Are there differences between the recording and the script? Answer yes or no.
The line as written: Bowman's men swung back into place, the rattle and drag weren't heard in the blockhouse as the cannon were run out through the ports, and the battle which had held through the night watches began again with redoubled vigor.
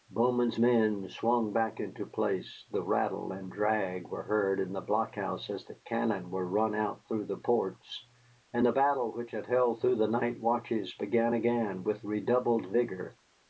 yes